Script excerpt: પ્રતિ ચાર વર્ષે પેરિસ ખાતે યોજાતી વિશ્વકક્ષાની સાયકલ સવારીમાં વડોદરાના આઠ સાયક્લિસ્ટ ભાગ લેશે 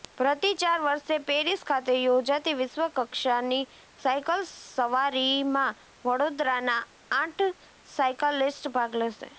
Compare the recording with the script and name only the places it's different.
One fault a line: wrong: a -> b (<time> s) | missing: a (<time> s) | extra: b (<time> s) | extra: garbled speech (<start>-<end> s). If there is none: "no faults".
no faults